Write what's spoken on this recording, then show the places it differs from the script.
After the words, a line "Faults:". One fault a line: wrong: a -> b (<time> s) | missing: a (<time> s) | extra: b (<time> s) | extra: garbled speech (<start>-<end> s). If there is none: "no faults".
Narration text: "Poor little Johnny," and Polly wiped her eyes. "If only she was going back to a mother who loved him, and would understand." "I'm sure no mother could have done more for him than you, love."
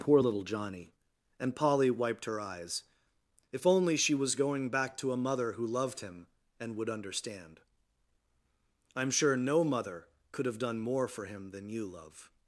"Poor little Johnny," and Polly wiped her eyes. "If only she was going back to a mother who loved him, and would understand." "I'm sure no mother could have done more for him than you, love."
Faults:
no faults